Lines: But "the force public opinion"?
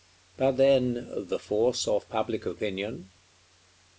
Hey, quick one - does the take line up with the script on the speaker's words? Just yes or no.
no